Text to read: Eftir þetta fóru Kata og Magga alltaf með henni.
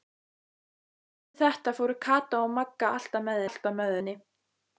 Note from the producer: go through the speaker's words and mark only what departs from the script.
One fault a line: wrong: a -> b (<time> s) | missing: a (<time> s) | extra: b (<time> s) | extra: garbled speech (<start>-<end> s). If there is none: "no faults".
extra: alltaf með (3.5 s)